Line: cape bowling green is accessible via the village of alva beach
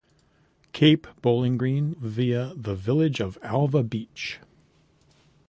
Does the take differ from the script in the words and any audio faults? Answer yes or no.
yes